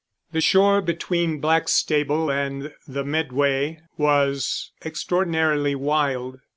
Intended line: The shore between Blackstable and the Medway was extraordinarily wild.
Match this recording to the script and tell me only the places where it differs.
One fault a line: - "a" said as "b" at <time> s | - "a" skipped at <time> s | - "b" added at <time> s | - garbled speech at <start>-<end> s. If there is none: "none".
none